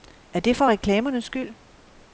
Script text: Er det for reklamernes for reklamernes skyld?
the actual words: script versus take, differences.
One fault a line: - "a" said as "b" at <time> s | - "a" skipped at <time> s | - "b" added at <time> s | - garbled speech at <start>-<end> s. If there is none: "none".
- "for reklamernes" skipped at 1.2 s